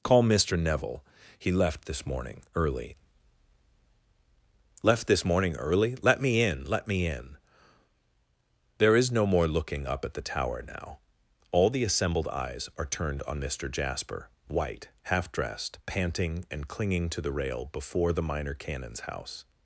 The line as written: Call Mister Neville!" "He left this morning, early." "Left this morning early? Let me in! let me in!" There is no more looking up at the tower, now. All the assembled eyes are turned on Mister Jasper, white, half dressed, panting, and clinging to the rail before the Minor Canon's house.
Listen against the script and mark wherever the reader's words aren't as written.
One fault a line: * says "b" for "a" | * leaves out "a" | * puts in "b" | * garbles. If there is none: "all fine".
all fine